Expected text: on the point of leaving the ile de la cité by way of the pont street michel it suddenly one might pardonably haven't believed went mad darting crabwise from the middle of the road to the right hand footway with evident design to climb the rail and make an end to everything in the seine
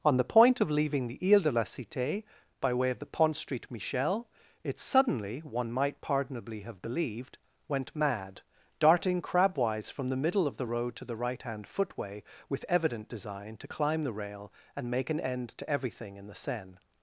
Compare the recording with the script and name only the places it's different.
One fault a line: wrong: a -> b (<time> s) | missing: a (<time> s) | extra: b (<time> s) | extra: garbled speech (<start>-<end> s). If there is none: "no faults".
wrong: haven't -> have (6.6 s)